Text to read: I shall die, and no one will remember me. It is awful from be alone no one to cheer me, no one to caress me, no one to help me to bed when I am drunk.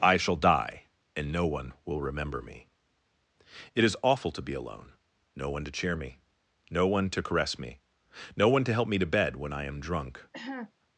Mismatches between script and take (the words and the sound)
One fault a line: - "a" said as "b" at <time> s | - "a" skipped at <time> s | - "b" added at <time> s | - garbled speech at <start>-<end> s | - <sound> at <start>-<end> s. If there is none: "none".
- "from" said as "to" at 4.3 s
- cough at 10.3-10.7 s